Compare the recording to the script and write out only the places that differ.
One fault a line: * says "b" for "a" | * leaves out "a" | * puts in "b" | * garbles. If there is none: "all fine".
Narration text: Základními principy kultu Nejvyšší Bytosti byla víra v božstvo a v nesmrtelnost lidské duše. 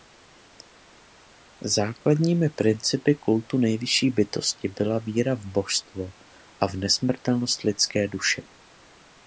all fine